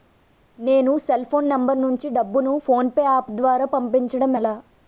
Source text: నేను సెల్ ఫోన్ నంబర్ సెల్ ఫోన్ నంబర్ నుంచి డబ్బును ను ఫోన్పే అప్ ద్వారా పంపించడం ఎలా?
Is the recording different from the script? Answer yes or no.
yes